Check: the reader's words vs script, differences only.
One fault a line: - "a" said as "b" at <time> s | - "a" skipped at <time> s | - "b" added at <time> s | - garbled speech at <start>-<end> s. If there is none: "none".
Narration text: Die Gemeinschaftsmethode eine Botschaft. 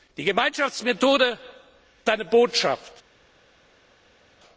none